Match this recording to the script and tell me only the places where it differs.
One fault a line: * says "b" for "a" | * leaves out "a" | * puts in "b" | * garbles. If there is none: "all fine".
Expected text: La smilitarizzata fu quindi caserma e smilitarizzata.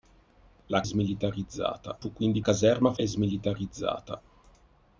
all fine